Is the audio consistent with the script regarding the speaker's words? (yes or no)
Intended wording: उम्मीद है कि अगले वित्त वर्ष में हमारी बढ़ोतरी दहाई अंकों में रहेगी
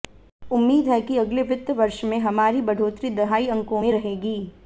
yes